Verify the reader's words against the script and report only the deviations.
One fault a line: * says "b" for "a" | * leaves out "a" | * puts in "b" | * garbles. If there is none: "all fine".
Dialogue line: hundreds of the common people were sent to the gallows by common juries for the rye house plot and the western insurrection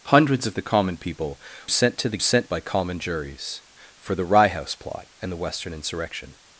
* leaves out "were"
* says "sent" for "gallows"